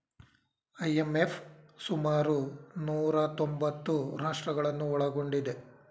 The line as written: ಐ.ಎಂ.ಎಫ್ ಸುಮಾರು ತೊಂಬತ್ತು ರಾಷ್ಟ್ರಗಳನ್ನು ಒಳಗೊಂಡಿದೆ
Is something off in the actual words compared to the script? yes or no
yes